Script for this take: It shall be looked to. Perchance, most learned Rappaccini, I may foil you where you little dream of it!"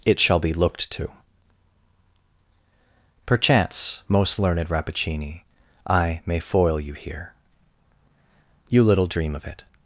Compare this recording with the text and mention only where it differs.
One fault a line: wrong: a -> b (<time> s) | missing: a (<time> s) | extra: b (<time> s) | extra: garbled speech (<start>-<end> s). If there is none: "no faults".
wrong: where -> here (6.9 s)